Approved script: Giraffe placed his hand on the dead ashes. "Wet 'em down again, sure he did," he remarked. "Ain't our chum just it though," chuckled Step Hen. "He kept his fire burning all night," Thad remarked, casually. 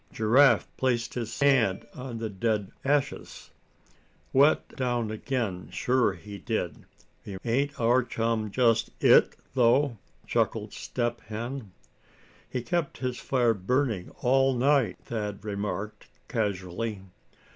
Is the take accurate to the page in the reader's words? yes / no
no